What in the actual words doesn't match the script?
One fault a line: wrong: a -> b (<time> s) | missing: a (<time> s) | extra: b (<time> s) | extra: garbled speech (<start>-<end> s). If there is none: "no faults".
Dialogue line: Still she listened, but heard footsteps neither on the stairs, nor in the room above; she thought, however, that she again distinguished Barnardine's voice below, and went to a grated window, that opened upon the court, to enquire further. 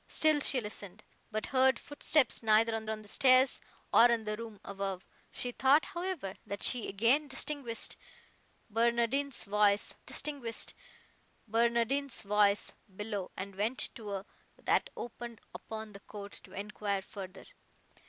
extra: on (2.9 s)
extra: distinguished Barnardine's voice (10.0 s)
missing: grated window (14.3 s)